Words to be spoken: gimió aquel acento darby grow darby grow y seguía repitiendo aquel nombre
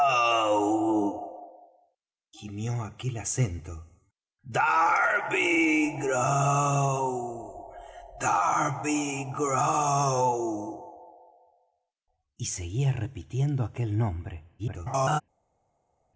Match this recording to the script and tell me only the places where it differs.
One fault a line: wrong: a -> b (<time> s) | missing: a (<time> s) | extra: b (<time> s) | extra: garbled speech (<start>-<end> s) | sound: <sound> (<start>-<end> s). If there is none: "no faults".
extra: garbled speech (14.6-15.2 s)